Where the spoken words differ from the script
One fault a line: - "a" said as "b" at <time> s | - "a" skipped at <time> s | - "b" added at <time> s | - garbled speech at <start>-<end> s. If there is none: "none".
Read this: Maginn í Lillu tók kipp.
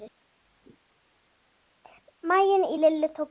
none